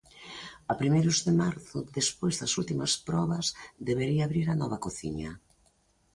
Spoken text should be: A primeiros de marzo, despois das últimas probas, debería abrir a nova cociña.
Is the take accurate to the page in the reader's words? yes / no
yes